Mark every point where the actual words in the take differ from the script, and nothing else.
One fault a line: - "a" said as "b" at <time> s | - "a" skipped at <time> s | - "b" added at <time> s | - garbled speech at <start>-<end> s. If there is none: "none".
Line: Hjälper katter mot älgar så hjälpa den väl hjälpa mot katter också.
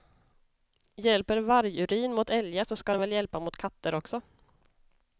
- "katter" said as "vargurin" at 1.4 s
- "hjälpa" said as "ska" at 2.8 s